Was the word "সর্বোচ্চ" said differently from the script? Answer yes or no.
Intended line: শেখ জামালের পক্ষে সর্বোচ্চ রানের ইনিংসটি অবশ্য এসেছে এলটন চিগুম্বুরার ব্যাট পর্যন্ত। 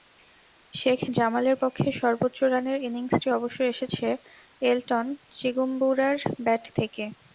no